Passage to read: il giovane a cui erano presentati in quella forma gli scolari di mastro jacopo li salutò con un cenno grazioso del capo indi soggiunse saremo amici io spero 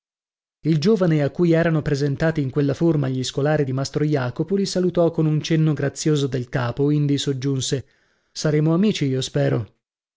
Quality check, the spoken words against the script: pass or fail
pass